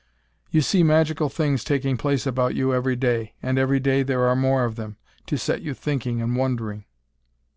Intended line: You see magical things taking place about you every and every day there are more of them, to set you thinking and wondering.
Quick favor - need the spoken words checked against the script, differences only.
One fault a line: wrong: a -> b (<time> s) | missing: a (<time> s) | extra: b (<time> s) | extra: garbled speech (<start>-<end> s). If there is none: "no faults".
extra: day (3.0 s)